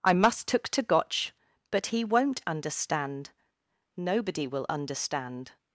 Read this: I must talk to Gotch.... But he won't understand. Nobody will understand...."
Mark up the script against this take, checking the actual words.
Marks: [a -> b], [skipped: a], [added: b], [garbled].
I must [talk -> took] to Gotch.... But he won't understand. Nobody will understand...."